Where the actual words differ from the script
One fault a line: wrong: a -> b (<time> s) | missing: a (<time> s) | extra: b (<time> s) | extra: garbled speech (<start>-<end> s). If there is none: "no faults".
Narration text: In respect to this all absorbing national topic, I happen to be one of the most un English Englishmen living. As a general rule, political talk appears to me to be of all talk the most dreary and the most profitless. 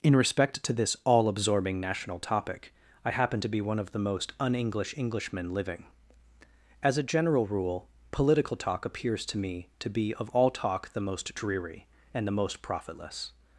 no faults